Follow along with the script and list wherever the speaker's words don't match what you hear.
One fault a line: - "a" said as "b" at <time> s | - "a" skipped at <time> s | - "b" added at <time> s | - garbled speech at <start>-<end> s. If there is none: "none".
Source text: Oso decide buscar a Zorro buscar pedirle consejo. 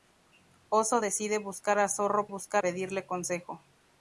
none